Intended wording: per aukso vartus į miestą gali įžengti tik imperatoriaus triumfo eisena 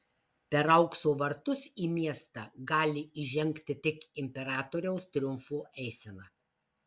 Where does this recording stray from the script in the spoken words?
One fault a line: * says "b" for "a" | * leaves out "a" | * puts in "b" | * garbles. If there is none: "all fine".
all fine